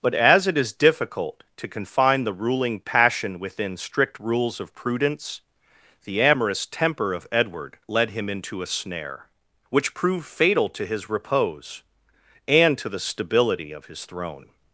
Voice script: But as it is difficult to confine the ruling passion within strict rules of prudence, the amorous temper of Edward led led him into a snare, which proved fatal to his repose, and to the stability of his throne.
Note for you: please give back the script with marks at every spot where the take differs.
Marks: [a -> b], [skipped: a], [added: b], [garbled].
But as it is difficult to confine the ruling passion within strict rules of prudence, the amorous temper of Edward led [skipped: led] him into a snare, which proved fatal to his repose, and to the stability of his throne.